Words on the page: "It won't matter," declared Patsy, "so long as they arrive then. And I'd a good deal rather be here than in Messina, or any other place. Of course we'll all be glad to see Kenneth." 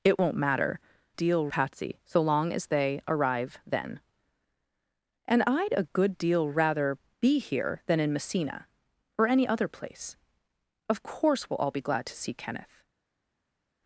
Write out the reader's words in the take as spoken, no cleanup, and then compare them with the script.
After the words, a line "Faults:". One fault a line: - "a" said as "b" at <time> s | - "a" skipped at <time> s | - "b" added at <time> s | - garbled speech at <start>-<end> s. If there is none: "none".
"It won't matter," deal Patsy, "so long as they arrive then. And I'd a good deal rather be here than in Messina, or any other place. Of course we'll all be glad to see Kenneth."
Faults:
- "declared" said as "deal" at 1.2 s